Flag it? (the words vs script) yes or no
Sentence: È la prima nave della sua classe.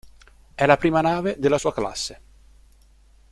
no